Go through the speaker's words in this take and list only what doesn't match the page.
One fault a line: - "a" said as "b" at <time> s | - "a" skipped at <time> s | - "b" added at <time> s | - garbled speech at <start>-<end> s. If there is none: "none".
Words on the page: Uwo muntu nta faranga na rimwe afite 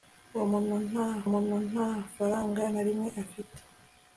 - "muntu nta" added at 1.3 s